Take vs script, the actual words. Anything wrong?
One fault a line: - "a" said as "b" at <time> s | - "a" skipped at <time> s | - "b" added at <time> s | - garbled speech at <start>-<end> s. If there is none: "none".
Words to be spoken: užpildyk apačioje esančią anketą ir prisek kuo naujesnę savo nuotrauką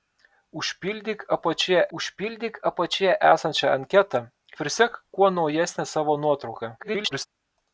- "užpildyk apačioje" added at 2.0 s
- "ir" skipped at 4.2 s
- garbled speech at 6.8-7.3 s